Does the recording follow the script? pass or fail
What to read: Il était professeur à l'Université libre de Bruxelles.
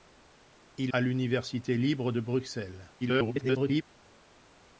fail